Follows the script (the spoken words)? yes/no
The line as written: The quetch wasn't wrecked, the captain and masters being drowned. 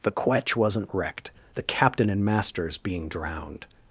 yes